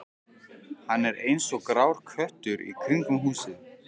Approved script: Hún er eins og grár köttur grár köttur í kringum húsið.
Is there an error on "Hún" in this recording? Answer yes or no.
yes